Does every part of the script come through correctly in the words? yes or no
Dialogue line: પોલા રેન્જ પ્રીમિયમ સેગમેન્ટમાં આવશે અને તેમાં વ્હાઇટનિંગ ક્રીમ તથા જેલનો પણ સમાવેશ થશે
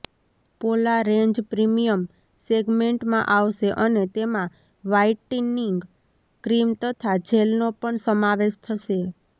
yes